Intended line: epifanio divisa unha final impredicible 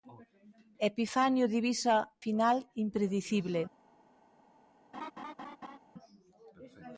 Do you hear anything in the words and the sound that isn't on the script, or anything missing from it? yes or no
yes